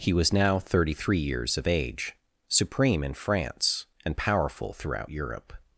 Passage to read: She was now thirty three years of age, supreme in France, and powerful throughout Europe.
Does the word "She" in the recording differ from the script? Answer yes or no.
yes